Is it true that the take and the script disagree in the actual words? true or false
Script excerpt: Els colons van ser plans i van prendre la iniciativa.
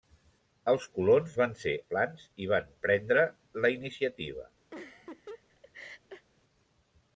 false